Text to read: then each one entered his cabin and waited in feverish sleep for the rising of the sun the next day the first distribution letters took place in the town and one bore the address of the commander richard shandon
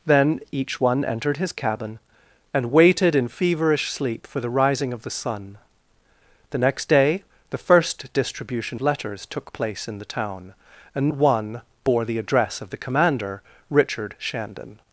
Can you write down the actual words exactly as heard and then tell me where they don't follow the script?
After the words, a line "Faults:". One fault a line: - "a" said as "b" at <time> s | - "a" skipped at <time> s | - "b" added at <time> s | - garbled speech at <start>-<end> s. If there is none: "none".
then each one entered his cabin and waited in feverish sleep for the rising of the sun the next day the first distribution letters took place in the town and one bore the address of the commander richard shandon
Faults:
none